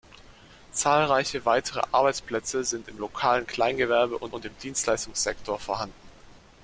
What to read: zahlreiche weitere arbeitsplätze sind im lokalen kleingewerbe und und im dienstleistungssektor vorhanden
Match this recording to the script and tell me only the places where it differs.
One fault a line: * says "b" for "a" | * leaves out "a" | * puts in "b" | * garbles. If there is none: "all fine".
all fine